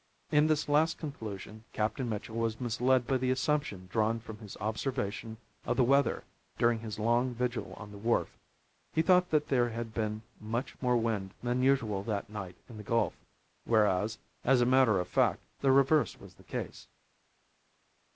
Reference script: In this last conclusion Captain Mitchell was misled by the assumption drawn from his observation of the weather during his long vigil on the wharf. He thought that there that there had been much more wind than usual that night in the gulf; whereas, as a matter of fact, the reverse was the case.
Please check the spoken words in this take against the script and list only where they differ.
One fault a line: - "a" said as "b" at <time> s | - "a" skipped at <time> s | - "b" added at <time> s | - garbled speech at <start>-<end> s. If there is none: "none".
- "that there" skipped at 9.7 s